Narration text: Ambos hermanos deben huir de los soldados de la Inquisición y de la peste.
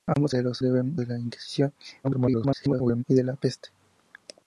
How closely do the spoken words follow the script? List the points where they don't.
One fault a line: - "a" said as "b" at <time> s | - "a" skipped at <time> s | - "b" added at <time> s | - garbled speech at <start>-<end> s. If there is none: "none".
- "hermanos deben huir" skipped at 0.3 s
- "soldados" said as "deben" at 0.6 s
- garbled speech at 2.0-3.0 s